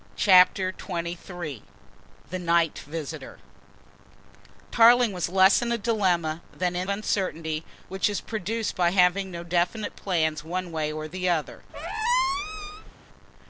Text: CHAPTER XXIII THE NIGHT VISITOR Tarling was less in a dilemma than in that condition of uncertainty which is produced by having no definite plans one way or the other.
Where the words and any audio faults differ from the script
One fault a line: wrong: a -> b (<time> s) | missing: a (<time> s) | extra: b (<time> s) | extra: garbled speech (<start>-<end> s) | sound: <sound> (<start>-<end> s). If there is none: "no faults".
missing: that condition of (6.9 s)
sound: squeak (11.7-12.9 s)